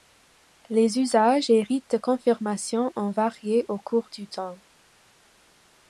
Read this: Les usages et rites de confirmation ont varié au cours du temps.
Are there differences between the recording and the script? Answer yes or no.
no